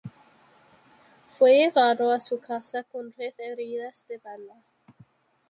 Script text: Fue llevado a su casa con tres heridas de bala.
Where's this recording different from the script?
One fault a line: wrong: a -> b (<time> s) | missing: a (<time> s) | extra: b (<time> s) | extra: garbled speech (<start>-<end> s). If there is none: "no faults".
no faults